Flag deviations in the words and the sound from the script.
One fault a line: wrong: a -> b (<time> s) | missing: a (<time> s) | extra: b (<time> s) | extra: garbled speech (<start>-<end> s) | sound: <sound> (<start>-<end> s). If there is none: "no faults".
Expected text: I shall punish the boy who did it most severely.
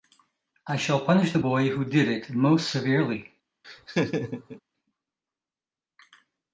sound: laugh (3.6-4.6 s)